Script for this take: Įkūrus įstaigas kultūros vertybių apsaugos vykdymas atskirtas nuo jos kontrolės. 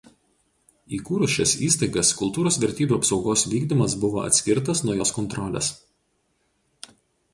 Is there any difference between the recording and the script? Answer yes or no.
yes